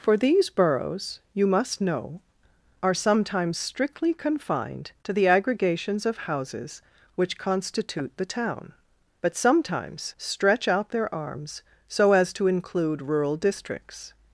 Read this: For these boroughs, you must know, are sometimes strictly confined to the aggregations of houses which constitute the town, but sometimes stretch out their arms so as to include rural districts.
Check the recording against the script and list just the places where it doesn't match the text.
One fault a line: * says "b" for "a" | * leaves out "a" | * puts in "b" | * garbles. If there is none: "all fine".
all fine